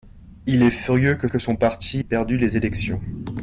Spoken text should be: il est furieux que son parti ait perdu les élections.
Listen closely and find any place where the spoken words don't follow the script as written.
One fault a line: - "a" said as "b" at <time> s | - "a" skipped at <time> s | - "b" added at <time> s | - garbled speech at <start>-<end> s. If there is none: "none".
- "que" added at 1.3 s
- "ait" skipped at 2.0 s